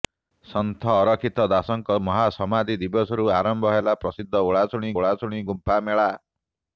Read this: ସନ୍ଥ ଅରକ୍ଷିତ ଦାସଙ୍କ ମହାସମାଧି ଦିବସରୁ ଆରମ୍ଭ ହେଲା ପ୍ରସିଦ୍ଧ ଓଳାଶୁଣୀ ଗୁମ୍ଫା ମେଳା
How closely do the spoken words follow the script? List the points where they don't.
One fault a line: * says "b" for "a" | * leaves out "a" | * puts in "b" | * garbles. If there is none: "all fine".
* puts in "ଓଳାଶୁଣୀ"